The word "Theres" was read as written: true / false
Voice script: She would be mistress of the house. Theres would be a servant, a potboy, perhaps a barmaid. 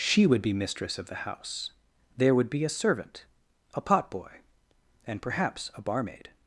false